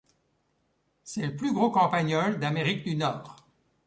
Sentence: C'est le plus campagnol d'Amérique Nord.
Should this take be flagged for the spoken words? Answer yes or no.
yes